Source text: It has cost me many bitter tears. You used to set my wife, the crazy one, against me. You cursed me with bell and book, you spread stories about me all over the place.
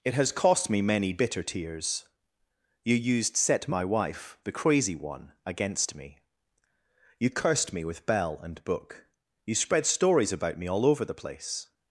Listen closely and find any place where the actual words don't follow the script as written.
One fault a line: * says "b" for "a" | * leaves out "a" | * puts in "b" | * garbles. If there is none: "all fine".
* leaves out "to"